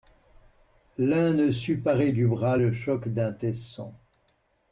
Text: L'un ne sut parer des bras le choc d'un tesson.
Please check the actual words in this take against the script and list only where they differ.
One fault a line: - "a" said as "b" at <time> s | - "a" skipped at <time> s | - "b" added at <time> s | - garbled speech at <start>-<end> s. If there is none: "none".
- "des" said as "du" at 2.1 s